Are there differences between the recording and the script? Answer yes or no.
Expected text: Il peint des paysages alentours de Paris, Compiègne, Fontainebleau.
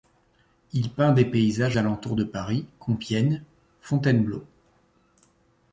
no